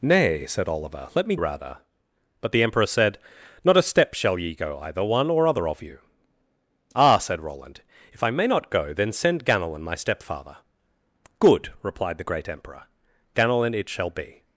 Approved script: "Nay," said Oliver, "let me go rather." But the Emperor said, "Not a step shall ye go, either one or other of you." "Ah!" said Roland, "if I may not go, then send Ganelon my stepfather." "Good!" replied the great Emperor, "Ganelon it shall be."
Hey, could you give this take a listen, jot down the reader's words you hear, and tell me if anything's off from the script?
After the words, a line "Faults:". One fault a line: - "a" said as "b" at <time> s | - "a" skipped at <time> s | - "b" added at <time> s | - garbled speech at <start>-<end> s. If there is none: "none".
"Nay," said Oliver, "let me rather." But the Emperor said, "Not a step shall ye go, either one or other of you." "Ah!" said Roland, "if I may not go, then send Ganelon my stepfather." "Good!" replied the great Emperor, "Ganelon it shall be."
Faults:
- "go" skipped at 1.4 s